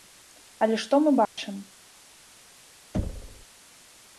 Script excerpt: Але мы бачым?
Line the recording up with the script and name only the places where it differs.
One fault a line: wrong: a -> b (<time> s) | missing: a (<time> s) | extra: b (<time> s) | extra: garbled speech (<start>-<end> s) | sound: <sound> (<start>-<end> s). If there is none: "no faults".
extra: што (0.8 s)
sound: dropout (1.3-1.4 s)
sound: thud (2.9-3.5 s)